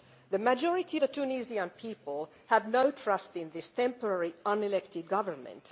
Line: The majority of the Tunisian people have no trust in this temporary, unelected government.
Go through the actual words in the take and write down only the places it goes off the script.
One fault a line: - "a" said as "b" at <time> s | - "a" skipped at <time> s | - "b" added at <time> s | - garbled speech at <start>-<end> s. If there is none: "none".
- "of" skipped at 1.0 s